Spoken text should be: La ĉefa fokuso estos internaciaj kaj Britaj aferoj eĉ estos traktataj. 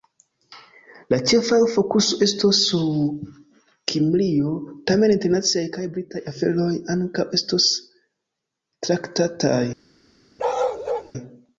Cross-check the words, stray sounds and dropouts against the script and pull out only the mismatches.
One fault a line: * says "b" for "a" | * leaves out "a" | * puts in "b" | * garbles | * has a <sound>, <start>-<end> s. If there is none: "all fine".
* puts in "sur Kimrio tamen"
* says "ankaŭ" for "eĉ"
* has a bark, 10.4-11.1 s